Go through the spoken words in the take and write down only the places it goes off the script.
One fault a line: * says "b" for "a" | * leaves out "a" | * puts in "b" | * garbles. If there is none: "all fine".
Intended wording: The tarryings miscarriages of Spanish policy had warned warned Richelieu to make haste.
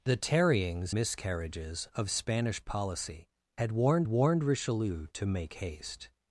all fine